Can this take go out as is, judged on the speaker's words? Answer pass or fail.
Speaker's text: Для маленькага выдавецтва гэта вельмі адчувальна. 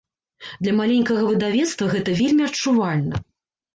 pass